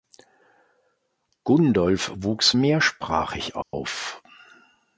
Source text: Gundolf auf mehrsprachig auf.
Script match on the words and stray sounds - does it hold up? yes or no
no